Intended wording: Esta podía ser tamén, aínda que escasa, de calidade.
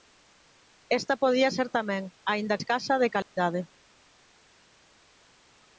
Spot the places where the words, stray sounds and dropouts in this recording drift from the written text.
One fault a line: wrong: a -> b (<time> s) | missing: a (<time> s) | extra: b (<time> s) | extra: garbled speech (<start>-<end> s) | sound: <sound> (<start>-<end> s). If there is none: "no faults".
missing: que (2.6 s)
sound: dropout (3.2-3.4 s)